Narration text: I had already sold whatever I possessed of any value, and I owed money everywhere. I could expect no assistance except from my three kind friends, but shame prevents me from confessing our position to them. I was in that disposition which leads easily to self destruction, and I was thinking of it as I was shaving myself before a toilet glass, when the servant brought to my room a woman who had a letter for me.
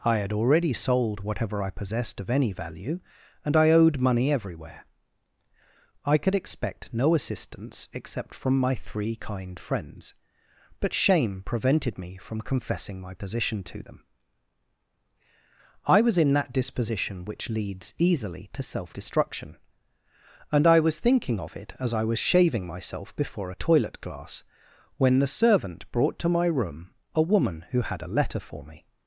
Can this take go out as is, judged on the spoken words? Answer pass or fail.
fail